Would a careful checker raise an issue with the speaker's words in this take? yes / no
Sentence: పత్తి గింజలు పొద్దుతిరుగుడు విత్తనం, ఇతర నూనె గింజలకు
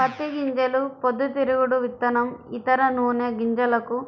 no